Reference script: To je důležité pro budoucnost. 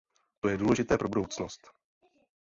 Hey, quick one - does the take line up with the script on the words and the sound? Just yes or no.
yes